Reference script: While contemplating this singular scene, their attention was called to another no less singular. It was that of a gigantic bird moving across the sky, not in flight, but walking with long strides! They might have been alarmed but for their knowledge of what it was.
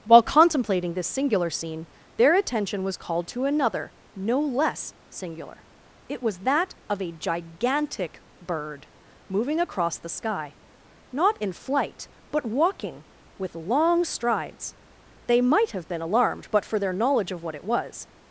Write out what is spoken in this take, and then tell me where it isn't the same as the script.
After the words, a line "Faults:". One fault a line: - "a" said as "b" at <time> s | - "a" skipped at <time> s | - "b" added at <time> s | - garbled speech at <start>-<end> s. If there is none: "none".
While contemplating this singular scene, their attention was called to another no less singular. It was that of a gigantic bird moving across the sky, not in flight, but walking with long strides! They might have been alarmed but for their knowledge of what it was.
Faults:
none